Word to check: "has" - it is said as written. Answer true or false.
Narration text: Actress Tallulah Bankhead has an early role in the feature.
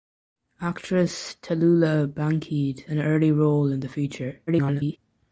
false